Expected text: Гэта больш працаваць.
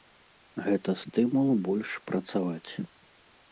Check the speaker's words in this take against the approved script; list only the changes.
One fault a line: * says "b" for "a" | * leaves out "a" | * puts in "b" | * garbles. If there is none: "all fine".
* puts in "стымул"